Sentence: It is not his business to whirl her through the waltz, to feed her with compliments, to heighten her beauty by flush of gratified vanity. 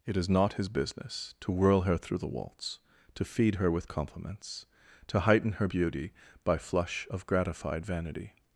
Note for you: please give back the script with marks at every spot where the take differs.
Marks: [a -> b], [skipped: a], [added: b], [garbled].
It is not his business to whirl her through the waltz, to feed her with compliments, to heighten her beauty by flush of gratified vanity.